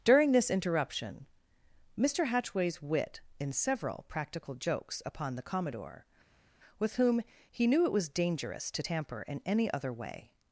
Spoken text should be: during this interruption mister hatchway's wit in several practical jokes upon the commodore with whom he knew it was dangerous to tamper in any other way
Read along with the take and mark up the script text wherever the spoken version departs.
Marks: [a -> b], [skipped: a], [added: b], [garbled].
during this interruption mister hatchway's wit in several practical jokes upon the commodore with whom he knew it was dangerous to tamper in any other way